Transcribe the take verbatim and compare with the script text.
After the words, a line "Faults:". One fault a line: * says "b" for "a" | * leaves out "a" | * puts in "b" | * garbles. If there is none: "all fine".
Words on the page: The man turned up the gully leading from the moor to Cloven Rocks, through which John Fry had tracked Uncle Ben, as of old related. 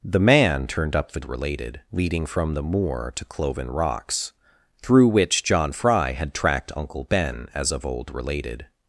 The man turned up the related leading from the moor to Cloven Rocks, through which John Fry had tracked Uncle Ben, as of old related.
Faults:
* says "related" for "gully"